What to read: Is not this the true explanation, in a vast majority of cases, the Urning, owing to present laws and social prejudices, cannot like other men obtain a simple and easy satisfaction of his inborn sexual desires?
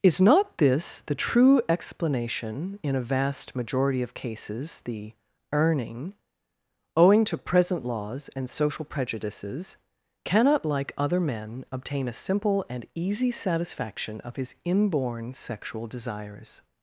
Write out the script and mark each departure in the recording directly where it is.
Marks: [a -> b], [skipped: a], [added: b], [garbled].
Is not this the true explanation, in a vast majority of cases, the Urning, owing to present laws and social prejudices, cannot like other men obtain a simple and easy satisfaction of his inborn sexual desires?